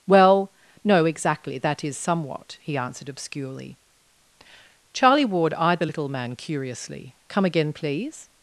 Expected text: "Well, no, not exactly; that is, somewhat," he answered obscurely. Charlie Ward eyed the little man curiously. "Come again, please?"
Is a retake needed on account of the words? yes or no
yes